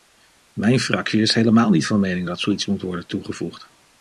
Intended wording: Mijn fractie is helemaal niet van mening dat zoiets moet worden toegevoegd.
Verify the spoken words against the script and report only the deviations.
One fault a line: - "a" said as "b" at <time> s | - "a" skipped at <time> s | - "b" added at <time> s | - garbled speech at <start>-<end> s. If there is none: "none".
none